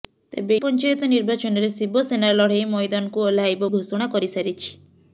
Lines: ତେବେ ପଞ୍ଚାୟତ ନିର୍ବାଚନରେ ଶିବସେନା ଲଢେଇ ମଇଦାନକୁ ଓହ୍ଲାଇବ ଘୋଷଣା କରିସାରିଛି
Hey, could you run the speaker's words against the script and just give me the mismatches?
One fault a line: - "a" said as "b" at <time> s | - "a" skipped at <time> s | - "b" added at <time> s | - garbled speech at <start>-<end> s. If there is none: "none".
none